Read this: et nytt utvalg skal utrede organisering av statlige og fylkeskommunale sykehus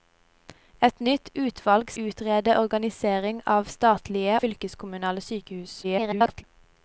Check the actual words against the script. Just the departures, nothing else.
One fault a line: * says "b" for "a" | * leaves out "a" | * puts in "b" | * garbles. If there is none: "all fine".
* leaves out "skal"
* leaves out "og"
* garbles